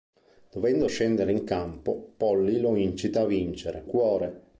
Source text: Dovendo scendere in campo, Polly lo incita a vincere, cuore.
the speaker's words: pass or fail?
pass